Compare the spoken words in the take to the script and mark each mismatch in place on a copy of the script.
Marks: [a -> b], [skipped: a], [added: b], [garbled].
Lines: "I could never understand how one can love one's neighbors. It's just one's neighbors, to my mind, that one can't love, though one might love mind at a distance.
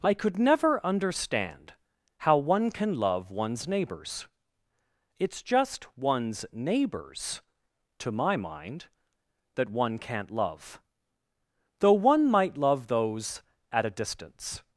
"I could never understand how one can love one's neighbors. It's just one's neighbors, to my mind, that one can't love, though one might love [mind -> those] at a distance.